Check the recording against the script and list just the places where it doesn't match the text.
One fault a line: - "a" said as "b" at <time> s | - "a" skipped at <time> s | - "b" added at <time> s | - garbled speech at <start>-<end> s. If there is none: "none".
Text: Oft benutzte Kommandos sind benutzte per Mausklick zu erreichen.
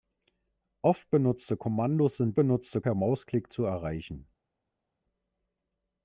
none